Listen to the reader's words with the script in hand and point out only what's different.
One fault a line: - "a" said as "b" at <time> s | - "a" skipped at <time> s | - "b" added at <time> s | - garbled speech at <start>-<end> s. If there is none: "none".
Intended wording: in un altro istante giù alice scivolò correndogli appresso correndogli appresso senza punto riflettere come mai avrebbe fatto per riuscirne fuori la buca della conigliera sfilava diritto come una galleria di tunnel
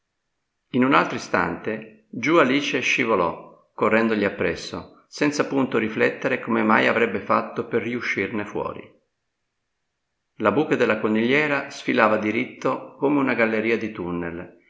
- "correndogli appresso" skipped at 5.0 s